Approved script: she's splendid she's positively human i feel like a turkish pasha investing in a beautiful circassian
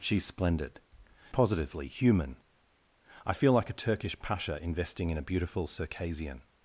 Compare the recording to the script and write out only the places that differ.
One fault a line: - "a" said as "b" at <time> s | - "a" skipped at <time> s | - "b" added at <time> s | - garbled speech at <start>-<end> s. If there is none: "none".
- "she's" skipped at 0.8 s